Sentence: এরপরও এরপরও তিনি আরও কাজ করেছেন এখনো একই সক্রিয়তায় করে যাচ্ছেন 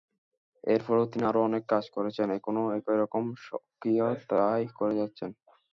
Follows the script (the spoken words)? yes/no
no